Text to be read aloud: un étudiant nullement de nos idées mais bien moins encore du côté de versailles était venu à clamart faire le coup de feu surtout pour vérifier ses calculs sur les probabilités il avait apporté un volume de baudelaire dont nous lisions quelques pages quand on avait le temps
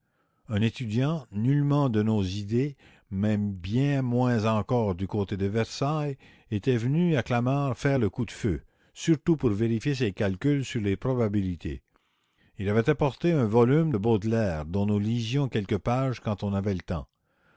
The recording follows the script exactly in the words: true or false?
true